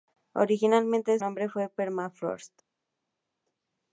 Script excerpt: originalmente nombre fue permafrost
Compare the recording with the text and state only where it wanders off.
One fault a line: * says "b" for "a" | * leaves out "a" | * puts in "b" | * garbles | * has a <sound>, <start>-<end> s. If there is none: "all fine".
all fine